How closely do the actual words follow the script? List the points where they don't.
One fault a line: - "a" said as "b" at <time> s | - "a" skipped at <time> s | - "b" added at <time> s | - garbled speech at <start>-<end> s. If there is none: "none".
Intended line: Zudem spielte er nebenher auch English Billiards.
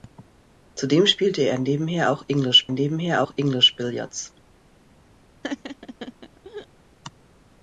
- "nebenher auch English" added at 2.7 s